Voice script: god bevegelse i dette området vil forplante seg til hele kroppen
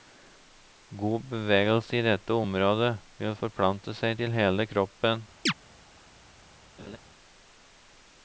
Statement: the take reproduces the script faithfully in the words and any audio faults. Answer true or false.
false